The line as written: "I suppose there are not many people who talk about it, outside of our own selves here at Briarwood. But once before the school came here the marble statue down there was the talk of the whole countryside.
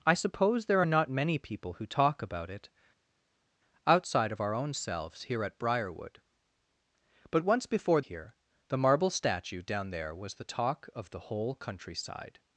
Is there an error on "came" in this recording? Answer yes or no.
yes